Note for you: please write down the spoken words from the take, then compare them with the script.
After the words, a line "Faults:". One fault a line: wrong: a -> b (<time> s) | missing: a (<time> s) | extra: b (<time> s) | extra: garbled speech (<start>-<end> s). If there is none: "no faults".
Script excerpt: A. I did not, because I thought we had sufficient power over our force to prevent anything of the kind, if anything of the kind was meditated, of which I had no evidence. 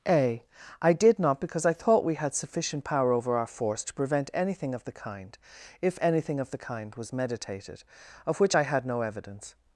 A. I did not, because I thought we had sufficient power over our force to prevent anything of the kind, if anything of the kind was meditated, of which I had no evidence.
Faults:
no faults